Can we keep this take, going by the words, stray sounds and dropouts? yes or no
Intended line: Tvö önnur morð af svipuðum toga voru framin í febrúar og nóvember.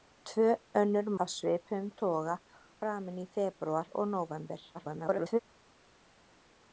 no